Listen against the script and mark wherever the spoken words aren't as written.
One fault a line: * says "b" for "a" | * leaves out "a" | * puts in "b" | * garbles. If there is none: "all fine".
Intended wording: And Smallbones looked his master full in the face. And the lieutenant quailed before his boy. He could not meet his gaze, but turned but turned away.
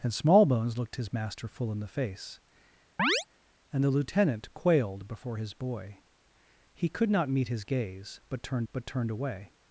all fine